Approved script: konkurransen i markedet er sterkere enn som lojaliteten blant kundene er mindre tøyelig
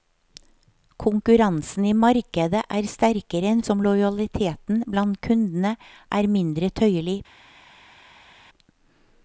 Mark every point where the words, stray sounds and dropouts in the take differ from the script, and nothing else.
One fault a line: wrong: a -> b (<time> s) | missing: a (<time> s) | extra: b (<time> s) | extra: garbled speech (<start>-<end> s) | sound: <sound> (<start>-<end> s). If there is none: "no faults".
no faults